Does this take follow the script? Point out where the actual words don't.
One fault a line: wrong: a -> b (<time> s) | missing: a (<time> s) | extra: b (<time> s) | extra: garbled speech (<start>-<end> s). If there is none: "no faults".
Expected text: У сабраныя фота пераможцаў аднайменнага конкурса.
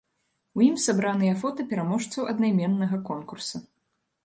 extra: ім (0.7 s)